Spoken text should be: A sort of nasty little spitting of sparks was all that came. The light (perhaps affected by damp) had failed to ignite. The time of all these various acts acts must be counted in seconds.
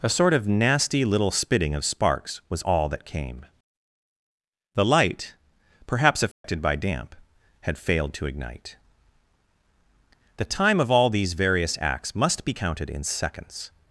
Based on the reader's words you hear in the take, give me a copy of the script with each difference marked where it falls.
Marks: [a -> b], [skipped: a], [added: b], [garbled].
A sort of nasty little spitting of sparks was all that came. The light (perhaps affected by damp) had failed to ignite. The time of all these various acts [skipped: acts] must be counted in seconds.